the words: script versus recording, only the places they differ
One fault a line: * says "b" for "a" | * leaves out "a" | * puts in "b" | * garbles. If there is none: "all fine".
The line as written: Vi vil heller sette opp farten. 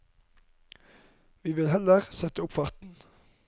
all fine